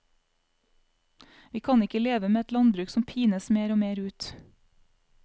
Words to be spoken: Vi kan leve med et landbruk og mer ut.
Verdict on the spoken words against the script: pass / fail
fail